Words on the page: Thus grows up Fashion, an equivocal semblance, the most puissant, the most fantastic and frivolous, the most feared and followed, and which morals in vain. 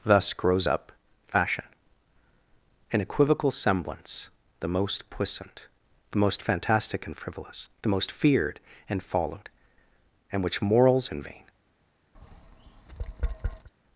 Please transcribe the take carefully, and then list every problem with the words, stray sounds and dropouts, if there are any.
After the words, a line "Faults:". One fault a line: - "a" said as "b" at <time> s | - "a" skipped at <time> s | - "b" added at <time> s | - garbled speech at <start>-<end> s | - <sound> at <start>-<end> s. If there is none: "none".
Thus grows up Fashion, an equivocal semblance, the most puissant, the most fantastic and frivolous, the most feared and followed, and which morals in vain.
Faults:
- tap at 12.1-13.7 s